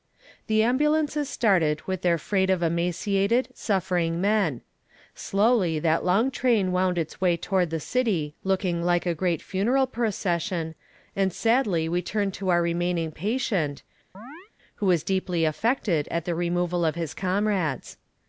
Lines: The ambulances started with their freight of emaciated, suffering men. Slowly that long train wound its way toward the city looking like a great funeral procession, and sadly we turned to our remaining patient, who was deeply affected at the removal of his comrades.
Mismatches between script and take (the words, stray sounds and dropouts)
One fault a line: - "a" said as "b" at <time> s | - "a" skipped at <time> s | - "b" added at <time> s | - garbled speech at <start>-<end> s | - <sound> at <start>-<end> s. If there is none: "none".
- chirp at 14.1-14.5 s